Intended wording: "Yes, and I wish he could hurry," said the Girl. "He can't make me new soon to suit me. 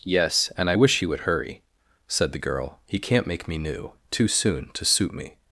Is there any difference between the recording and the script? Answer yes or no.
yes